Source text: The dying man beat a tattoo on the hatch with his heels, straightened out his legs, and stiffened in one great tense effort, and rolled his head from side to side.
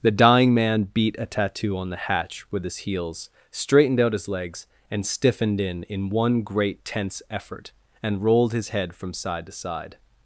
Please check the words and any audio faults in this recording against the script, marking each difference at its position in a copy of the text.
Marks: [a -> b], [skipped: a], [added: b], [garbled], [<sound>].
The dying man beat a tattoo on the hatch with his heels, straightened out his legs, and stiffened in [added: in] one great tense effort, and rolled his head from side to side.